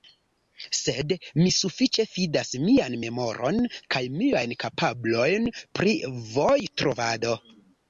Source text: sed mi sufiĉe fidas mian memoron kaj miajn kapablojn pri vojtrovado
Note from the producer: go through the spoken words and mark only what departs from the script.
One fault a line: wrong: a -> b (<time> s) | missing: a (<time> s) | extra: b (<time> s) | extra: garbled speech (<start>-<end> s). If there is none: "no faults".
no faults